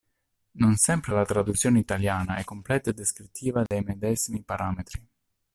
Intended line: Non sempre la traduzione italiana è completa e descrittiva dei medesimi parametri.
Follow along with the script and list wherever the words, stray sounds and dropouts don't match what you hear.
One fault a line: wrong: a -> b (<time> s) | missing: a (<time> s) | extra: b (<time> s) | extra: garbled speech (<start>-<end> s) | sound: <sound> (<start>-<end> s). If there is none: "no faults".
sound: dropout (3.7-3.7 s)